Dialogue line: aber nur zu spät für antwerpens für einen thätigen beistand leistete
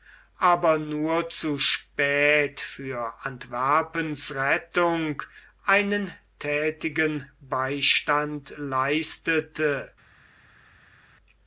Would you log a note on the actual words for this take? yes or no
yes